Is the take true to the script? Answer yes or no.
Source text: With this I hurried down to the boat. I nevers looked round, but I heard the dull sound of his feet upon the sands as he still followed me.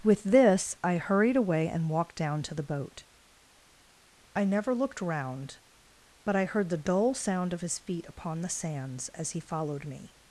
no